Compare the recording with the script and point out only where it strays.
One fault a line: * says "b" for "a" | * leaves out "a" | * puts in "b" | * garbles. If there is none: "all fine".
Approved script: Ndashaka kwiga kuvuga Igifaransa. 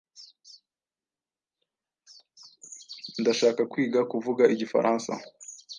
all fine